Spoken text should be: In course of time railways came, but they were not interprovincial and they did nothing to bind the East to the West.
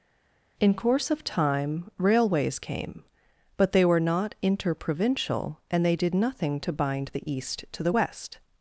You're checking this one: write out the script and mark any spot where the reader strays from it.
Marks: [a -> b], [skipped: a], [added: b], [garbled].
In course of time railways came, but they were not interprovincial and they did nothing to bind the East to the West.